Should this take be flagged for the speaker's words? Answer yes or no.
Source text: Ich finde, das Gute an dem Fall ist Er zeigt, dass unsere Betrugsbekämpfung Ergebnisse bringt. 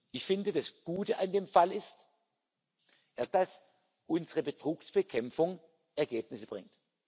yes